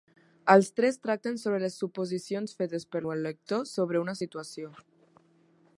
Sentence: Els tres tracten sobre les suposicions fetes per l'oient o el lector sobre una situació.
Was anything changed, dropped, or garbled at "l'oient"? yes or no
yes